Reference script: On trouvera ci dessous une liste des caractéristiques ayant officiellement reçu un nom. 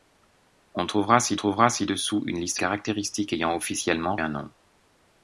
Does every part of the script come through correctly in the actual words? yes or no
no